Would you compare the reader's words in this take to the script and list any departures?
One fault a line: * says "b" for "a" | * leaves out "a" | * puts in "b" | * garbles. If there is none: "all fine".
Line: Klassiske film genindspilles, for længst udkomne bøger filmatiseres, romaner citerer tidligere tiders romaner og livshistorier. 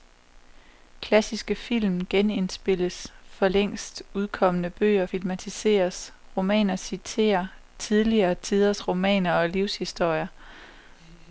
all fine